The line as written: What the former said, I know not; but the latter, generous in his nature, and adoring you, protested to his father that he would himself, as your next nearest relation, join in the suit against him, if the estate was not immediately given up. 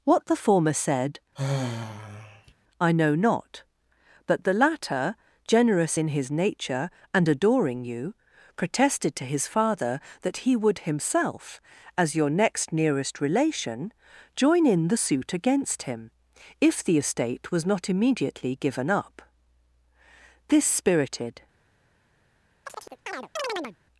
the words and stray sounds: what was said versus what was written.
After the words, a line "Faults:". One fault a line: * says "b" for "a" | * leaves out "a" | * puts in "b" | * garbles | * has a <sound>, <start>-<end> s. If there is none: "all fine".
What the former said, I know not; but the latter, generous in his nature, and adoring you, protested to his father that he would himself, as your next nearest relation, join in the suit against him, if the estate was not immediately given up. This spirited
Faults:
* has a sigh, 1.4-2.5 s
* puts in "This spirited"
* has a chirp, 22.6-23.8 s